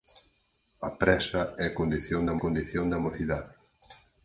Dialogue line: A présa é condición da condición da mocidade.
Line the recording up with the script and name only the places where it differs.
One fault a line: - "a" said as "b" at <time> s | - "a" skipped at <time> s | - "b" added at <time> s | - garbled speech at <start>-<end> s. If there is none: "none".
none